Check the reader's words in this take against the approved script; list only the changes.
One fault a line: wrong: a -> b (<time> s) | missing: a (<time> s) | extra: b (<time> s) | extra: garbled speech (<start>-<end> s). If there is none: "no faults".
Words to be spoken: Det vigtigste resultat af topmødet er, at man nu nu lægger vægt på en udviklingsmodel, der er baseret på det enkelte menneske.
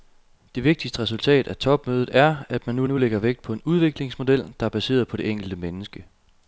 no faults